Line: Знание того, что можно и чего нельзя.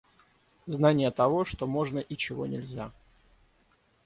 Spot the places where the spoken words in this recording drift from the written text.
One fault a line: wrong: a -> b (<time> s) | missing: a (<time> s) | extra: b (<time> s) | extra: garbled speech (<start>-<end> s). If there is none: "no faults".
no faults